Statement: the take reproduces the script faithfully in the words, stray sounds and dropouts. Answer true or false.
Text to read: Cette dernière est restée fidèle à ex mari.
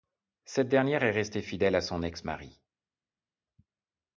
false